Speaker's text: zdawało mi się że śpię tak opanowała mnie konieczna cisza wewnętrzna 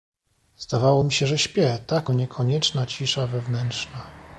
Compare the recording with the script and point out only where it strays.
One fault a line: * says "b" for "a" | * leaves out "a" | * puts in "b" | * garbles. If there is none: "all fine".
* leaves out "opanowała"